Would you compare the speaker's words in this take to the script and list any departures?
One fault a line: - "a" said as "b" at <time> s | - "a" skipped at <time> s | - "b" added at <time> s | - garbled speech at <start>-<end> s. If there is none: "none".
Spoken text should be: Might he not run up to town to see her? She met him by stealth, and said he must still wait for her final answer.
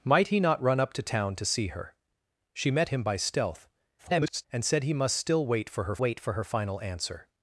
- garbled speech at 4.0-4.5 s
- "wait for her" added at 6.0 s